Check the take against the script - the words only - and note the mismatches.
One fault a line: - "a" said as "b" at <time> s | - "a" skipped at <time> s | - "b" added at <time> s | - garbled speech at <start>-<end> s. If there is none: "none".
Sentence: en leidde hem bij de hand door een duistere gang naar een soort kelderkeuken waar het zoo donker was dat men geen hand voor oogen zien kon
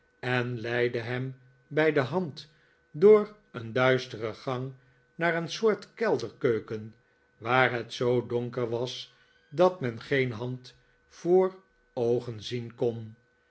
none